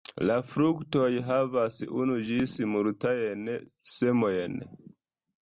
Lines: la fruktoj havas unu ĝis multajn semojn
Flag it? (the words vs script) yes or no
no